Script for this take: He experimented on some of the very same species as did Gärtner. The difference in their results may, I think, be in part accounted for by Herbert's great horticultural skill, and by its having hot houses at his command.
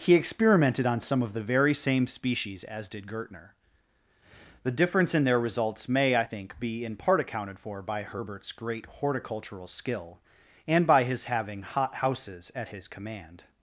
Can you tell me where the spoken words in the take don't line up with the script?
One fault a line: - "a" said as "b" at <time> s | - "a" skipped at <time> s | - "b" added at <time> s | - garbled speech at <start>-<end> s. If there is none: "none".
- "its" said as "his" at 11.0 s